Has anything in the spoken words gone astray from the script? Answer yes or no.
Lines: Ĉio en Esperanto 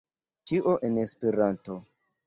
no